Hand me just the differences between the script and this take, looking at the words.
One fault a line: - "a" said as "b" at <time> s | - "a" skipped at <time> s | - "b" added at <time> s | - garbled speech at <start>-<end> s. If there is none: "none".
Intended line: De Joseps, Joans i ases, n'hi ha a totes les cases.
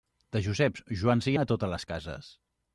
- "ases n'hi" skipped at 1.4 s